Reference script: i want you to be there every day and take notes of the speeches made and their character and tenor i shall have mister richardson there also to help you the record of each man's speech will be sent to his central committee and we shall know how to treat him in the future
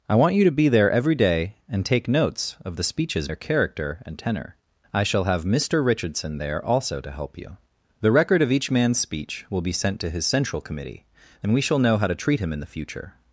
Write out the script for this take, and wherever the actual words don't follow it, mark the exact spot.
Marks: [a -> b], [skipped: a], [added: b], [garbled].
i want you to be there every day and take notes of the speeches [skipped: made and] their character and tenor i shall have mister richardson there also to help you the record of each man's speech will be sent to his central committee and we shall know how to treat him in the future